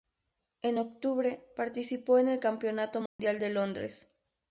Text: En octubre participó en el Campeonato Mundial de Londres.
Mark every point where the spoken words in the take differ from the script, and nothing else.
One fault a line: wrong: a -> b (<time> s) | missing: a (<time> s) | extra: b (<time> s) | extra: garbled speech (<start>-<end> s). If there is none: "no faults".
no faults